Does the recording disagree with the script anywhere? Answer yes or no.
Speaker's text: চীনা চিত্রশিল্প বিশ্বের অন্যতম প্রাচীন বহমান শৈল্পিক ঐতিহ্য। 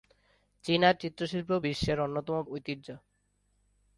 yes